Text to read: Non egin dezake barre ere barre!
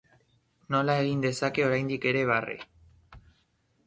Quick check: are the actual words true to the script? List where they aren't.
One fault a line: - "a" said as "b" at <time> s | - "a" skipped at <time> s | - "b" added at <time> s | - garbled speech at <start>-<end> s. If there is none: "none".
- "Non" said as "Nola" at 0.8 s
- "barre" said as "oraindik" at 1.7 s